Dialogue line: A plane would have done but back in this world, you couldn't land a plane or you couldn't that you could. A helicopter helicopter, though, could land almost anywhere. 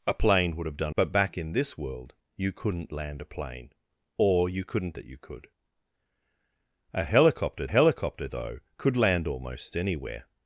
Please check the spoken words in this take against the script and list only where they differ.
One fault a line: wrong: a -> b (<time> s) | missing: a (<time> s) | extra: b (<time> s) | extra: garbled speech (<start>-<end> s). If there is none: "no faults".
no faults